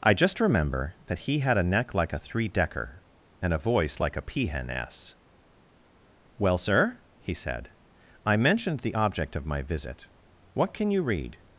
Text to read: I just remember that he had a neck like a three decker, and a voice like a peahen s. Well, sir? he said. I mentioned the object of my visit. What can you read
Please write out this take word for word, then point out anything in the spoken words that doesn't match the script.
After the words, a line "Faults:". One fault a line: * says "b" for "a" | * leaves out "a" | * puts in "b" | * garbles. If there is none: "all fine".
I just remember that he had a neck like a three decker, and a voice like a peahen s. Well, sir? he said. I mentioned the object of my visit. What can you read
Faults:
all fine